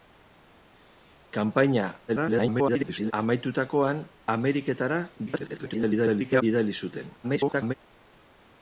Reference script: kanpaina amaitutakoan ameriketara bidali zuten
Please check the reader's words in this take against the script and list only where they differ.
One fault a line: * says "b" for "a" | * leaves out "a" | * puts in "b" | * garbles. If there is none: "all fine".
* garbles
* garbles
* garbles